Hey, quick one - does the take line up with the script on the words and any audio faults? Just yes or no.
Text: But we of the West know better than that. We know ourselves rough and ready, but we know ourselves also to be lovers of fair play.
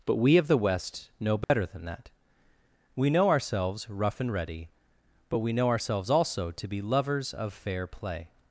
no